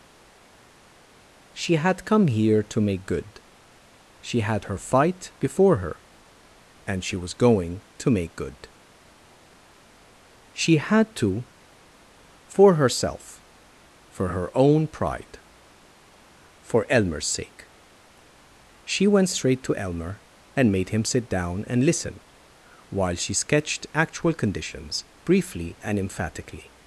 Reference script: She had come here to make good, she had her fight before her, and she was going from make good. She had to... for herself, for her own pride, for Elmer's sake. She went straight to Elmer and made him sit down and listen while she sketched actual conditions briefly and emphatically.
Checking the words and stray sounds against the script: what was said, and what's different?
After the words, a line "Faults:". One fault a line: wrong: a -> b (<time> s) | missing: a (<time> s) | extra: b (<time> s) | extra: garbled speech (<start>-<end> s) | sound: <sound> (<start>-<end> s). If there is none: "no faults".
She had come here to make good, she had her fight before her, and she was going to make good. She had to... for herself, for her own pride, for Elmer's sake. She went straight to Elmer and made him sit down and listen while she sketched actual conditions briefly and emphatically.
Faults:
wrong: from -> to (8.0 s)